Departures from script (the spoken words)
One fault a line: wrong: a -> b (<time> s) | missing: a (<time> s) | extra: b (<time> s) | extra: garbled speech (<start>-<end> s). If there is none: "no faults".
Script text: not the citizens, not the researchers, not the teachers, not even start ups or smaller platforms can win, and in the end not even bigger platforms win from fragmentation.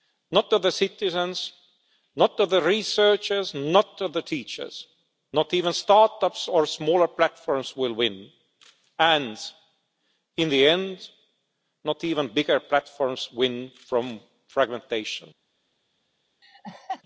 wrong: can -> will (7.8 s)